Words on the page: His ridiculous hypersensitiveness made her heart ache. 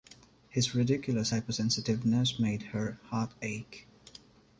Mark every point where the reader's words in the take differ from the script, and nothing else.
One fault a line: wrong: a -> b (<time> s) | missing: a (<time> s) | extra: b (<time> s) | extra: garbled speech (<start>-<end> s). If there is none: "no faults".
no faults